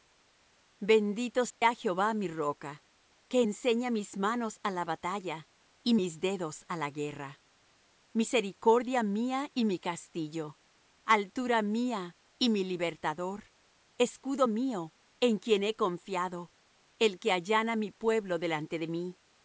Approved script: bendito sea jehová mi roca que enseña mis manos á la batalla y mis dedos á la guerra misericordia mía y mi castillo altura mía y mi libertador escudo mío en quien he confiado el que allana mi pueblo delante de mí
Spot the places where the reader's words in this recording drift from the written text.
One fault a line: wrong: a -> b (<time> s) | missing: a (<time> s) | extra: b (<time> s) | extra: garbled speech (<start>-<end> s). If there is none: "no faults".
no faults